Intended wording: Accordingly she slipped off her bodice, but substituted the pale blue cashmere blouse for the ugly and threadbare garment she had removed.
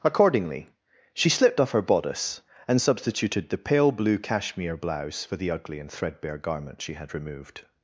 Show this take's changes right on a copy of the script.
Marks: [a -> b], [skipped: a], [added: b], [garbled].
Accordingly she slipped off her bodice, [but -> and] substituted the pale blue cashmere blouse for the ugly and threadbare garment she had removed.